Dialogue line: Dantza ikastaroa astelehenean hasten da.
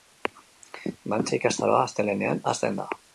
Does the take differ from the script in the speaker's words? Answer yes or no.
no